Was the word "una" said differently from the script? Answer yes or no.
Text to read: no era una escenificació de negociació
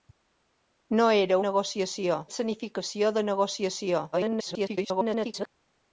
yes